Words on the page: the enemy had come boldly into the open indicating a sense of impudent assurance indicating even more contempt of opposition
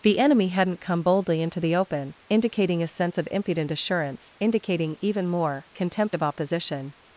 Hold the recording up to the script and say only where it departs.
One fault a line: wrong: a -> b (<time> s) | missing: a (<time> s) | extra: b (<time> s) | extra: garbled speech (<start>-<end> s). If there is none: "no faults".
wrong: had -> hadn't (0.5 s)